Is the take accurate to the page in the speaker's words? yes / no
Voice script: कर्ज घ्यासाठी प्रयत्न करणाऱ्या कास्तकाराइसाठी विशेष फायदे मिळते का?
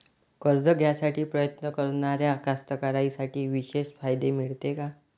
yes